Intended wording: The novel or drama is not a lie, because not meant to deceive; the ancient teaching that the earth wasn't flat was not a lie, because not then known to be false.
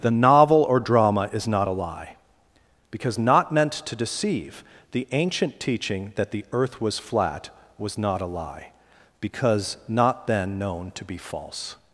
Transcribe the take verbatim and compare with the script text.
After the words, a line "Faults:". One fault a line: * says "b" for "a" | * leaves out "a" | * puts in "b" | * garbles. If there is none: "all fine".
The novel or drama is not a lie, because not meant to deceive; the ancient teaching that the earth was flat was not a lie, because not then known to be false.
Faults:
* says "was" for "wasn't"